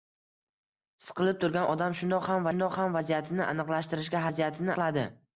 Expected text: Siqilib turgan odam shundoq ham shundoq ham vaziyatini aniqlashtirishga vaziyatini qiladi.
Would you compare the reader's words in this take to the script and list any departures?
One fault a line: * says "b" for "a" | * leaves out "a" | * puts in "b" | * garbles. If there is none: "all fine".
all fine